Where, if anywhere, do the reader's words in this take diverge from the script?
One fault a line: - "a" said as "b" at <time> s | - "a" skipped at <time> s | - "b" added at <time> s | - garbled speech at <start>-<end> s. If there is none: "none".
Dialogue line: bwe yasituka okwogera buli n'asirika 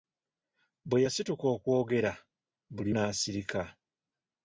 none